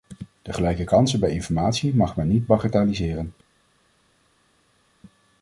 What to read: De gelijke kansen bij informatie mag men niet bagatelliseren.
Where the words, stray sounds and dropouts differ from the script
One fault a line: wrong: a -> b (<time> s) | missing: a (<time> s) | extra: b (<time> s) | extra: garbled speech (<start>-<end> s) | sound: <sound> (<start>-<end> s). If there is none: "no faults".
no faults